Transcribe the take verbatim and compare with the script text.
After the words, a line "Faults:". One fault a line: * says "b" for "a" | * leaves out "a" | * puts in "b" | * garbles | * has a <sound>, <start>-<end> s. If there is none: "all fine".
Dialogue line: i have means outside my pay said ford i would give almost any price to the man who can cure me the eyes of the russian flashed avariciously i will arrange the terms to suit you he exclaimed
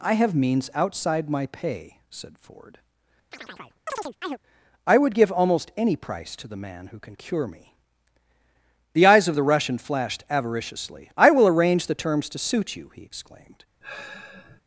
i have means outside my pay said ford i would give almost any price to the man who can cure me the eyes of the russian flashed avariciously i will arrange the terms to suit you he exclaimed
Faults:
* has a chirp, 3.3-4.4 s
* has a sigh, 13.8-14.6 s